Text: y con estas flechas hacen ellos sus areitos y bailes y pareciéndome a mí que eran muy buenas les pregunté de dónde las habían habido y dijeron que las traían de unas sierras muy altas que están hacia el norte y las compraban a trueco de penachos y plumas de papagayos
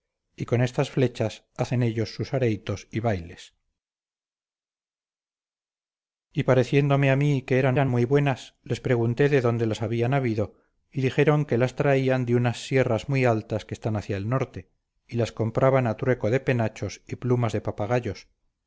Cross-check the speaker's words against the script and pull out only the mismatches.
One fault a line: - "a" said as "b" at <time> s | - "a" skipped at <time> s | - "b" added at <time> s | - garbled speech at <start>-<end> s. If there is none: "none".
- "eran" added at 7.7 s